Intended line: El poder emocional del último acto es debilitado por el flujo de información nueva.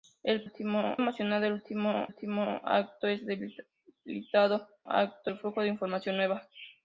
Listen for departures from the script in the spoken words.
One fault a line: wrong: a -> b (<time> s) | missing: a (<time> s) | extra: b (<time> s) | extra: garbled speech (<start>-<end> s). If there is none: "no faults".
wrong: poder -> último (0.4 s)
extra: último (2.1 s)
wrong: por -> acto (4.9 s)